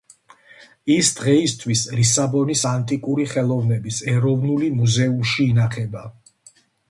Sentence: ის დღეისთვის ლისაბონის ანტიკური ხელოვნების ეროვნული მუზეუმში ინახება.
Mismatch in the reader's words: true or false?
false